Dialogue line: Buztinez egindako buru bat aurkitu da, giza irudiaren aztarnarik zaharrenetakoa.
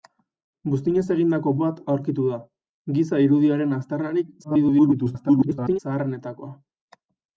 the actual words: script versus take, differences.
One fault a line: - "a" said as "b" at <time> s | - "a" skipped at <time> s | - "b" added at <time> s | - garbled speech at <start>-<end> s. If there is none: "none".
- "buru" skipped at 1.5 s
- garbled speech at 4.4-5.8 s